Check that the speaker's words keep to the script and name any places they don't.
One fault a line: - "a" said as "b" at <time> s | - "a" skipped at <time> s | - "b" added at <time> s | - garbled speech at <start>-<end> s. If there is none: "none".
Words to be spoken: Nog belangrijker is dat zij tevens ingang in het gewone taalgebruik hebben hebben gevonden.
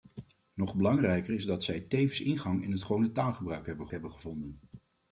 none